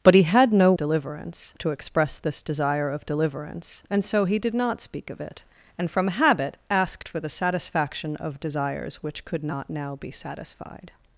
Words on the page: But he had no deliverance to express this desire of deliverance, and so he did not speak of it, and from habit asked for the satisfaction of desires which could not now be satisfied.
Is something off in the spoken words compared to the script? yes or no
no